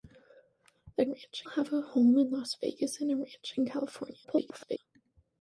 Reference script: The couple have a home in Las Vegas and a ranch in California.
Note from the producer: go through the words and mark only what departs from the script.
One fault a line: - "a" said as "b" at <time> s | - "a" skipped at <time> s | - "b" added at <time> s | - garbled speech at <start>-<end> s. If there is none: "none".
- "couple" said as "ranch" at 1.0 s
- garbled speech at 4.2-4.8 s